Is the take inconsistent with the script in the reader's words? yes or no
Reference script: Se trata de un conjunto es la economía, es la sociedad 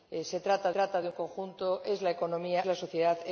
yes